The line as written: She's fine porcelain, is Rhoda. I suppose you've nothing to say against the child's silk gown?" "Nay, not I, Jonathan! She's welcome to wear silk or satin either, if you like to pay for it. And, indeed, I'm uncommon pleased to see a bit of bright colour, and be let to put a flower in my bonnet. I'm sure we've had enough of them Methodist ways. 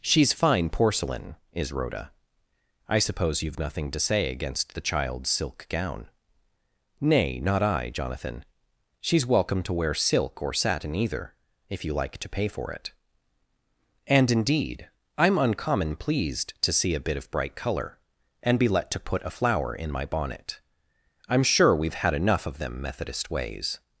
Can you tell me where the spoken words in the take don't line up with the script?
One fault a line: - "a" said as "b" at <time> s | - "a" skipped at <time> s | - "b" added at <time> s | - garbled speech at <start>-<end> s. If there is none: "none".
none